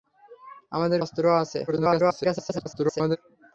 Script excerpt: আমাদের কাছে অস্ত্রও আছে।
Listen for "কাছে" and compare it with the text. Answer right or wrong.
wrong